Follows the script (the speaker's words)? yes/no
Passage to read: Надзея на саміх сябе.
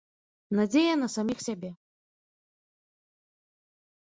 yes